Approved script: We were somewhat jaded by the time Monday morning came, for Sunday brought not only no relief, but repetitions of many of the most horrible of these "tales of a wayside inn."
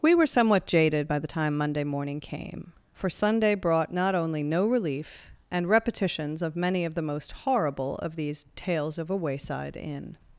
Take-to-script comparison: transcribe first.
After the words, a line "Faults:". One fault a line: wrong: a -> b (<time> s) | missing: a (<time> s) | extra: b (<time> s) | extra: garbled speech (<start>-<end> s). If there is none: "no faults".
We were somewhat jaded by the time Monday morning came, for Sunday brought not only no relief, and repetitions of many of the most horrible of these "tales of a wayside inn."
Faults:
wrong: but -> and (5.5 s)